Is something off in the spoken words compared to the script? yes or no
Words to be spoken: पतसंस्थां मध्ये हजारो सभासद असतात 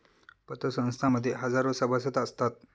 no